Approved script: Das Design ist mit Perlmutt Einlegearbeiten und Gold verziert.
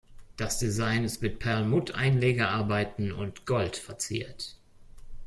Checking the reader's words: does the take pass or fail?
pass